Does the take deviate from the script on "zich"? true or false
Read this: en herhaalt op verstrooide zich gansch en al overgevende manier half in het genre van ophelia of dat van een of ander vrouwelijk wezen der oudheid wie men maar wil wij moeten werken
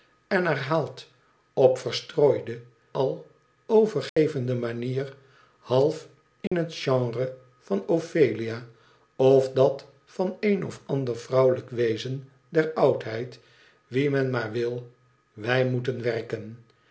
true